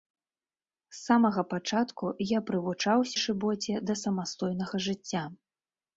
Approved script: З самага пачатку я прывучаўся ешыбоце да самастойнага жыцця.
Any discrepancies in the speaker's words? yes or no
no